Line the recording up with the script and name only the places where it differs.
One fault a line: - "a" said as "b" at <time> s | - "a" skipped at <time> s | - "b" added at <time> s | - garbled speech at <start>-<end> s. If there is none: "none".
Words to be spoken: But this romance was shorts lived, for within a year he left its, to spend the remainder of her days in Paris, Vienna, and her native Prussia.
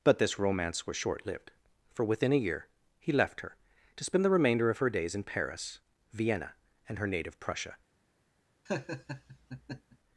- "shorts" said as "short" at 1.0 s
- "its" said as "her" at 3.4 s